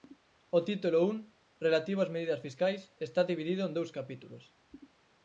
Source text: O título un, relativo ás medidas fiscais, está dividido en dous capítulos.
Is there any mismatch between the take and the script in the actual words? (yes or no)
no